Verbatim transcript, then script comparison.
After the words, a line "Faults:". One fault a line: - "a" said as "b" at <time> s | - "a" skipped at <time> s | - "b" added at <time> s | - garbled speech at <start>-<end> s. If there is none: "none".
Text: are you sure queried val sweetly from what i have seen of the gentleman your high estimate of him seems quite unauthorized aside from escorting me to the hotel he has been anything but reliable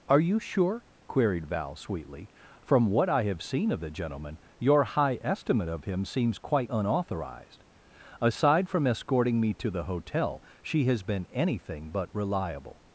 are you sure queried val sweetly from what i have seen of the gentleman your high estimate of him seems quite unauthorized aside from escorting me to the hotel she has been anything but reliable
Faults:
- "he" said as "she" at 10.6 s